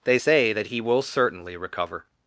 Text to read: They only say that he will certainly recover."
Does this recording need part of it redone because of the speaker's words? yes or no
yes